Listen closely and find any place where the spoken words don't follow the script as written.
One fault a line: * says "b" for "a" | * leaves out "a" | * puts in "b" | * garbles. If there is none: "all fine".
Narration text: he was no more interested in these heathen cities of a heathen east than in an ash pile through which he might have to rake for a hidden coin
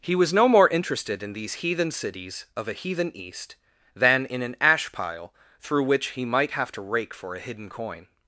all fine